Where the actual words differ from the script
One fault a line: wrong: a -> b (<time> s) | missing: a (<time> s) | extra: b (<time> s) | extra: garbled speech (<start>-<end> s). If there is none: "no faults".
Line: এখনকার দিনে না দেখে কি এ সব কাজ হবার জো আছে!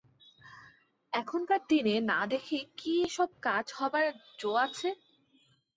no faults